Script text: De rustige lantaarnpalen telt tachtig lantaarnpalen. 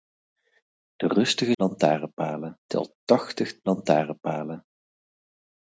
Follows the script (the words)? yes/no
yes